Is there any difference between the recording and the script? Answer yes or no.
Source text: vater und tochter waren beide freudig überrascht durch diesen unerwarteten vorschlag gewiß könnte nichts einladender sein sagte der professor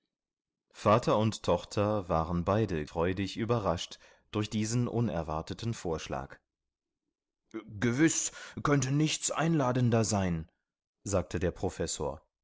no